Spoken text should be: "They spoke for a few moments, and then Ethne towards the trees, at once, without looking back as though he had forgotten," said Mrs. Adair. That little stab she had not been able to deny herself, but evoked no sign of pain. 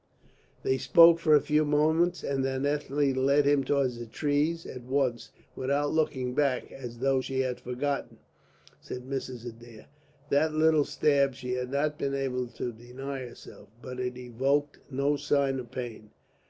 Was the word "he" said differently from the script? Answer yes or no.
yes